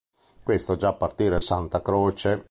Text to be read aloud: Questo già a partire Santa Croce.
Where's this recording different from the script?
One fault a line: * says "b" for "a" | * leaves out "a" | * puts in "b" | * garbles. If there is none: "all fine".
all fine